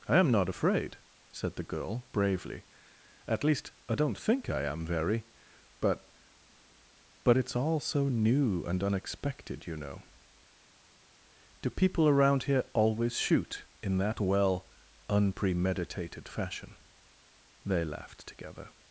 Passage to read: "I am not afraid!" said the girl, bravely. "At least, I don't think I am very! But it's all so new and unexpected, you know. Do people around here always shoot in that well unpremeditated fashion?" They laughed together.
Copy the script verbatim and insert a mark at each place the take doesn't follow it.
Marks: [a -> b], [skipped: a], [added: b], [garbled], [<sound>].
"I am not afraid!" said the girl, bravely. "At least, I don't think I am very! But [added: But] it's all so new and unexpected, you know. Do people around here always shoot in that well unpremeditated fashion?" They laughed together.